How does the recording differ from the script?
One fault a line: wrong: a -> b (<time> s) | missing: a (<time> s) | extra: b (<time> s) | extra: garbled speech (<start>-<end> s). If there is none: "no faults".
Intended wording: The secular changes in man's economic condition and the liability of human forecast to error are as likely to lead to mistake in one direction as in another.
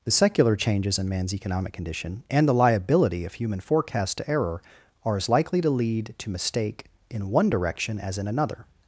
no faults